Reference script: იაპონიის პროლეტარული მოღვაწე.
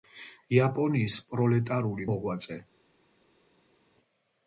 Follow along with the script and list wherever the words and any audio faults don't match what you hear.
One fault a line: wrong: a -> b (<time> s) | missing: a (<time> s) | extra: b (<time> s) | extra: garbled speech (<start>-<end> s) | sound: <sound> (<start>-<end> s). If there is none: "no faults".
no faults